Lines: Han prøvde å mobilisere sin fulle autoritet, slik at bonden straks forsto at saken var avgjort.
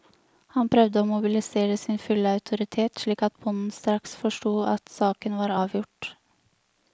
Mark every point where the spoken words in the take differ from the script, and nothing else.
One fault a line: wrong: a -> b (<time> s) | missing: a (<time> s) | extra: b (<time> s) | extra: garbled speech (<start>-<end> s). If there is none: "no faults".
no faults